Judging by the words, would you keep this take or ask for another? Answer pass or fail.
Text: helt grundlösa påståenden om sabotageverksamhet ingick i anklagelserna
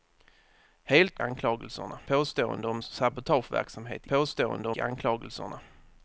fail